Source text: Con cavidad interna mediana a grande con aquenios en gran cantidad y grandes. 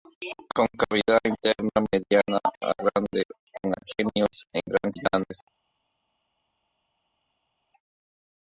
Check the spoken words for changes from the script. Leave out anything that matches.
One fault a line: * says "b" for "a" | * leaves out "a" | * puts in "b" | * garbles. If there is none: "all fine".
* leaves out "cantidad"